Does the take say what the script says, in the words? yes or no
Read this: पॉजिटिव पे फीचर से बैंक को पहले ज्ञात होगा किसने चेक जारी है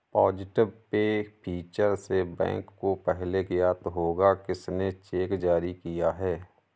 no